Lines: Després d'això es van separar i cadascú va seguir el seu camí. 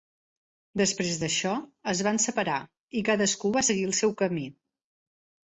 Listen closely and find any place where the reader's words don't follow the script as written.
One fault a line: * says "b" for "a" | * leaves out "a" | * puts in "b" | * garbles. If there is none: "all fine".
all fine